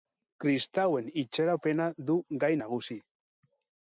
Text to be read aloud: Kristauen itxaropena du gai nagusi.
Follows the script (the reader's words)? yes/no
yes